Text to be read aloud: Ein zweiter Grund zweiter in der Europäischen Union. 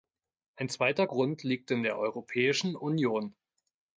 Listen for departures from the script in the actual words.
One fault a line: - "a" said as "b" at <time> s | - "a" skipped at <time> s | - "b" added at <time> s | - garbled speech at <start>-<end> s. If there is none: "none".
- "zweiter" said as "liegt" at 1.4 s